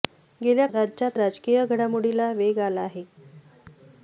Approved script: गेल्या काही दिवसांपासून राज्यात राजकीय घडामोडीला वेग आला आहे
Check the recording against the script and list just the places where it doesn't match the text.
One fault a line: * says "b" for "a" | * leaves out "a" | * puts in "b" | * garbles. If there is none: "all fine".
* leaves out "काही दिवसांपासून"